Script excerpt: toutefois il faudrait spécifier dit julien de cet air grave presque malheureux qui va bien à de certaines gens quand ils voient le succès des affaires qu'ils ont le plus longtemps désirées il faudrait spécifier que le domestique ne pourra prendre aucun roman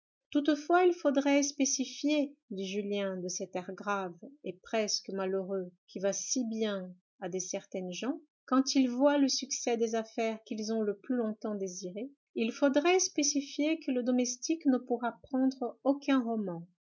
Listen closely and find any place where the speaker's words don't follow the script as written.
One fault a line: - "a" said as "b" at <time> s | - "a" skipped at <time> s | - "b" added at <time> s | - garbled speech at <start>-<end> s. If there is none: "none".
- "et" added at 4.4 s
- "si" added at 6.1 s